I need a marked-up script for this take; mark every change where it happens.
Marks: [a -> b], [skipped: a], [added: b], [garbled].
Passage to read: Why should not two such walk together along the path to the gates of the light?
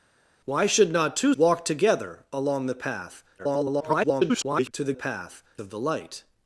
Why should not two [skipped: such] walk together along the path [garbled] to the [gates -> path] of the light?